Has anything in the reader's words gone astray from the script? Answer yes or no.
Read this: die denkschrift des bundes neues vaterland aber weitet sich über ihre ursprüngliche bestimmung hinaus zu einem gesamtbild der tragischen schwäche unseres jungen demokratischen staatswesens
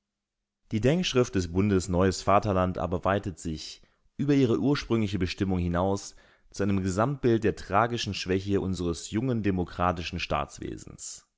no